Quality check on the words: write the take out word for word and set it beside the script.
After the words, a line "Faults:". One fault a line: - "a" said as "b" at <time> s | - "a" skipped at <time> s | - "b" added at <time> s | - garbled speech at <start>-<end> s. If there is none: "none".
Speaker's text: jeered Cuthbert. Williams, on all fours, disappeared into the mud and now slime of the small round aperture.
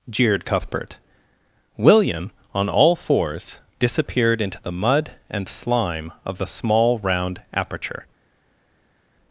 jeered Cuthbert. William, on all fours, disappeared into the mud and slime of the small round aperture.
Faults:
- "Williams" said as "William" at 1.8 s
- "now" skipped at 5.5 s